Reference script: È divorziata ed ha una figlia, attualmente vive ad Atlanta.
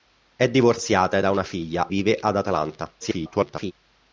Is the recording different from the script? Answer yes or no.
yes